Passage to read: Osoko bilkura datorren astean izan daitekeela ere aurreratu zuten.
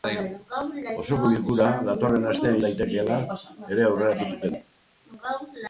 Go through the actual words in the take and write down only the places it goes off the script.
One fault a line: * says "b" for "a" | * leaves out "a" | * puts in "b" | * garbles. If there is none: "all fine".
* leaves out "izan"